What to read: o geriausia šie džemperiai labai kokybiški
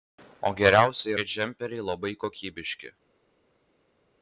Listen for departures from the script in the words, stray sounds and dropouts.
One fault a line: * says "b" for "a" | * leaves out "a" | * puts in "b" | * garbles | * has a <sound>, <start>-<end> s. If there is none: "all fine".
all fine